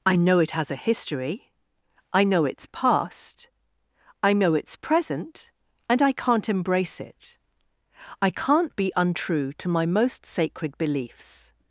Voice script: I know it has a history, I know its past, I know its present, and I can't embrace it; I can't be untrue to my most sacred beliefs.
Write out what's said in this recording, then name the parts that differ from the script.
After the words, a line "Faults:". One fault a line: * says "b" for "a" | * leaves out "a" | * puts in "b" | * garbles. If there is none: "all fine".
I know it has a history, I know its past, I know its present, and I can't embrace it; I can't be untrue to my most sacred beliefs.
Faults:
all fine